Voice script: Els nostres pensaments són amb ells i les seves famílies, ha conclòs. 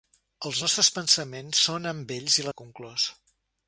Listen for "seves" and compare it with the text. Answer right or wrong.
wrong